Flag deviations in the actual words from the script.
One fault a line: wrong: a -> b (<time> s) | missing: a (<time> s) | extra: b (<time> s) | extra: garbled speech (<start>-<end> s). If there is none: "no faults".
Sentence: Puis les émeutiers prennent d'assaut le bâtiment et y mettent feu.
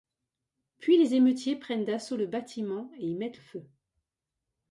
no faults